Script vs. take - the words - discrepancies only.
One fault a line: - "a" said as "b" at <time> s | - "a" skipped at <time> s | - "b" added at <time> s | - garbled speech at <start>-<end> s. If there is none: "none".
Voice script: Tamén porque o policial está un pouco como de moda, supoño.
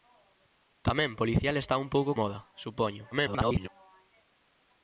- "porque" skipped at 1.1 s
- "como de" skipped at 2.1 s
- garbled speech at 3.1-3.7 s